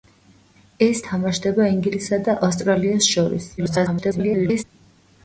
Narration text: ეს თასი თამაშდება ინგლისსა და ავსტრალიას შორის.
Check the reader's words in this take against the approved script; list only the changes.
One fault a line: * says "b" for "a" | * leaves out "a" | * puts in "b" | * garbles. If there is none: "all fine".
* leaves out "თასი"
* garbles